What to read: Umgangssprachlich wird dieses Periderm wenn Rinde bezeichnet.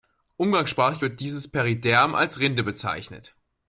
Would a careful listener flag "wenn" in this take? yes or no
yes